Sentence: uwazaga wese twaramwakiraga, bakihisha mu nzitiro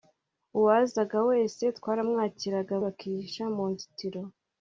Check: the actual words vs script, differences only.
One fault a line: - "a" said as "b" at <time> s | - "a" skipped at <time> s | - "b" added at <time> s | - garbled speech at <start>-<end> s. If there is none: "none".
none